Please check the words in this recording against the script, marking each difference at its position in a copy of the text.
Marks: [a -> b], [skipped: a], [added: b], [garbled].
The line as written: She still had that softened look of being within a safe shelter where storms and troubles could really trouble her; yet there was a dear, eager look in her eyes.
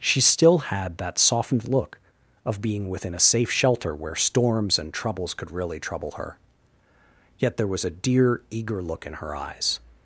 She still had that softened look of being within a safe shelter where storms and troubles could really trouble her; yet there was a dear, eager look in her eyes.